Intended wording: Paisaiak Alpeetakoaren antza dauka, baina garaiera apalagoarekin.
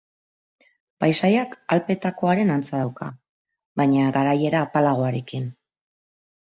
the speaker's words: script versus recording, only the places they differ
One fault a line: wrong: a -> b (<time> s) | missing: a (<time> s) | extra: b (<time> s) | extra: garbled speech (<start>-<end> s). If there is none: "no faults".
no faults